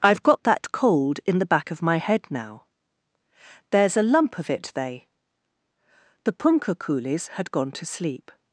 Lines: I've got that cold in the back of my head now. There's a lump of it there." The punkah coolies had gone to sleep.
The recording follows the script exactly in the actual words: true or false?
false